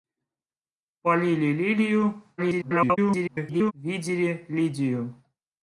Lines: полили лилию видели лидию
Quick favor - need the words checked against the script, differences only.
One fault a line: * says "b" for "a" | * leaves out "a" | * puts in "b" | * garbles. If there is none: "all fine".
* garbles